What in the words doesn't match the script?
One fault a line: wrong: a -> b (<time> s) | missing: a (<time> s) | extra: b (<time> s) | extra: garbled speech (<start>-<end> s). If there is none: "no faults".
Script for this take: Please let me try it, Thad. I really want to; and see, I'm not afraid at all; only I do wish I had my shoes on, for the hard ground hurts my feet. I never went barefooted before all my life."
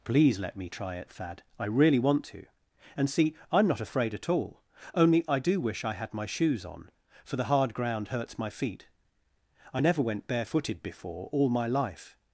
no faults